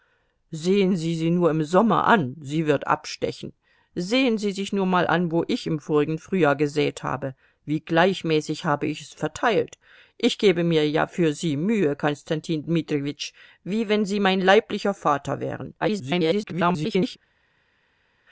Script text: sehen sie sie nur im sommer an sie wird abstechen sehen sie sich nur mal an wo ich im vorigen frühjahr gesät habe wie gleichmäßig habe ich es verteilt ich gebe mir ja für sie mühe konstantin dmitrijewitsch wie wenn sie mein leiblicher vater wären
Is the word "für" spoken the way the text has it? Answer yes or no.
yes